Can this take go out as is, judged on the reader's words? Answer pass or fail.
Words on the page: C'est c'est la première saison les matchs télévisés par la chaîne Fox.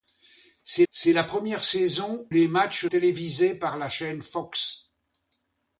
pass